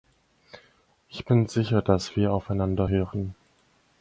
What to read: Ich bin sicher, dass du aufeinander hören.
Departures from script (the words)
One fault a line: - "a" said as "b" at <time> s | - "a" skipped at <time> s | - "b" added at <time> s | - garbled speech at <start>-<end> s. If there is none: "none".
- "du" said as "wir" at 2.2 s